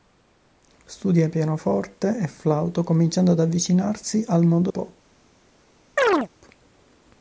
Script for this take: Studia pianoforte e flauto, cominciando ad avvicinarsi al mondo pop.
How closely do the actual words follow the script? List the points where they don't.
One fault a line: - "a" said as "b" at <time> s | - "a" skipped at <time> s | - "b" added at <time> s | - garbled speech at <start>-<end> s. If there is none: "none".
none